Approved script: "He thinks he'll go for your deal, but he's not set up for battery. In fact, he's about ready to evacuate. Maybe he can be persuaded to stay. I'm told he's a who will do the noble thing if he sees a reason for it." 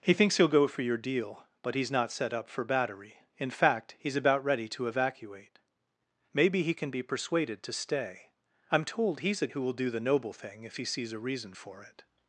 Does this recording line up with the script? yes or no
yes